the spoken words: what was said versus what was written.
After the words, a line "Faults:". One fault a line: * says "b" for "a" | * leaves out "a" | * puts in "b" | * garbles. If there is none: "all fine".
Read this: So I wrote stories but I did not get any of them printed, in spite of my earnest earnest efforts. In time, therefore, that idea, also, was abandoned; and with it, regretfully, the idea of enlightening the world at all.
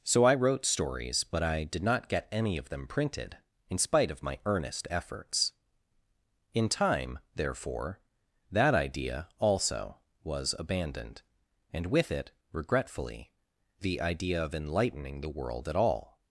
So I wrote stories but I did not get any of them printed, in spite of my earnest efforts. In time, therefore, that idea, also, was abandoned; and with it, regretfully, the idea of enlightening the world at all.
Faults:
* leaves out "earnest"